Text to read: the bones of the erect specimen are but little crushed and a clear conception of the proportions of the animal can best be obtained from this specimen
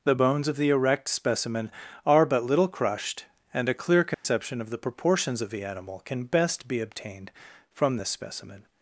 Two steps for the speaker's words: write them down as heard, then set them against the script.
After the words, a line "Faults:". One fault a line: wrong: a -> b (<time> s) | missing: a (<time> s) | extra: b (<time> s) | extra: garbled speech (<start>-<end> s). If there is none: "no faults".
the bones of the erect specimen are but little crushed and a clear conception of the proportions of the animal can best be obtained from this specimen
Faults:
no faults